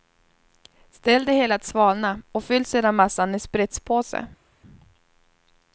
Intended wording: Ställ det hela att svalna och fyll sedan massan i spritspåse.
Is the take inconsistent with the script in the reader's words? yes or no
no